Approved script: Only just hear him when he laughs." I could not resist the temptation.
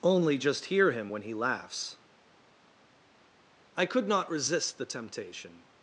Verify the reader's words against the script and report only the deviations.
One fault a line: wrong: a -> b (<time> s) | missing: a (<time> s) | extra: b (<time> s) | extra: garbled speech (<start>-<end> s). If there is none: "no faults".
no faults